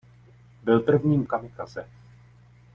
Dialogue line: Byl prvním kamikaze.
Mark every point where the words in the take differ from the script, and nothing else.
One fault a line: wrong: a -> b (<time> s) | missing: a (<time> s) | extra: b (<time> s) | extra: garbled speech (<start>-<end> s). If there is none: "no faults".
no faults